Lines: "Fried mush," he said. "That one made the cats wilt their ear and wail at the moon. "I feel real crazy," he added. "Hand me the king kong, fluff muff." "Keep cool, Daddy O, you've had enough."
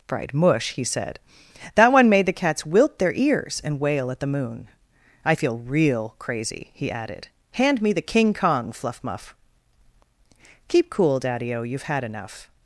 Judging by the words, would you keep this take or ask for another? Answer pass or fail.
fail